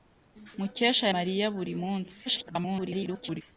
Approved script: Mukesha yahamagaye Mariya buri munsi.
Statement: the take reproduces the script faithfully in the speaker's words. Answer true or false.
false